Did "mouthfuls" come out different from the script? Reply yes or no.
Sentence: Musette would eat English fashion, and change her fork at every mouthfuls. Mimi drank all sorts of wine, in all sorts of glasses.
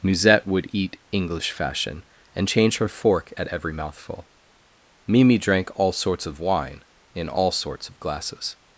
yes